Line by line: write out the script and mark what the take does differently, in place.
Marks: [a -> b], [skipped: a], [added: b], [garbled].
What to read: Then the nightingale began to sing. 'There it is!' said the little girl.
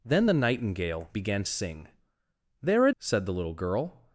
Then the nightingale began [skipped: to] sing. 'There it [skipped: is!'] said the little girl.